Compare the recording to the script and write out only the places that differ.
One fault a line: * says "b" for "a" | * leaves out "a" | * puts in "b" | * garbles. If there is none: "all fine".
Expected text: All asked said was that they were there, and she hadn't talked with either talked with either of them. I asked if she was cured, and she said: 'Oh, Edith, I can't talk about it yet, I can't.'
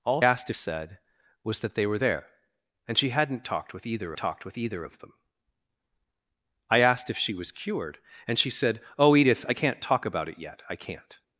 all fine